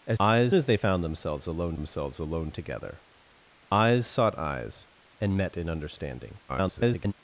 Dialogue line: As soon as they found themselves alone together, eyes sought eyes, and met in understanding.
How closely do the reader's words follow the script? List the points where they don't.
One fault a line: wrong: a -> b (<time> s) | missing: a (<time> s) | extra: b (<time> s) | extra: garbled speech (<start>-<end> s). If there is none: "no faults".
wrong: soon -> eyes (0.2 s)
extra: themselves alone (1.7 s)
extra: garbled speech (6.5-7.1 s)